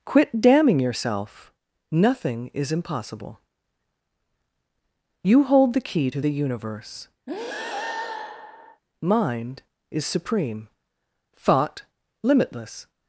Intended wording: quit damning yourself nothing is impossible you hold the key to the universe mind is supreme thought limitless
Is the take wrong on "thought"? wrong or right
right